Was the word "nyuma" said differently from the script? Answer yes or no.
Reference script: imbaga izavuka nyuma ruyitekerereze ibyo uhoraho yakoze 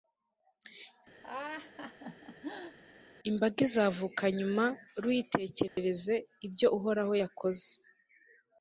no